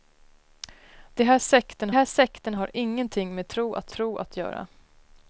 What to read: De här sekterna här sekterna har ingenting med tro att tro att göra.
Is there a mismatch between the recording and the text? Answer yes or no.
no